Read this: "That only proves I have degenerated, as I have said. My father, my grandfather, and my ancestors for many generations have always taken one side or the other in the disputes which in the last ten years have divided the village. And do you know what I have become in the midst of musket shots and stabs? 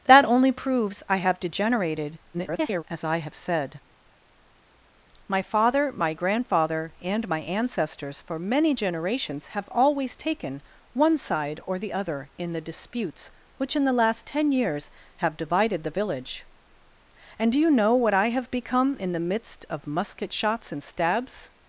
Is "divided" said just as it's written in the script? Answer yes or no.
yes